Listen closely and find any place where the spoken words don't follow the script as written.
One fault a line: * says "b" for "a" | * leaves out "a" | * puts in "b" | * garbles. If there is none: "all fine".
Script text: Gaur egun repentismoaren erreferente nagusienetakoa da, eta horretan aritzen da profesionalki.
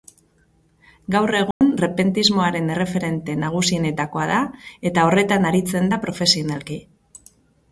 all fine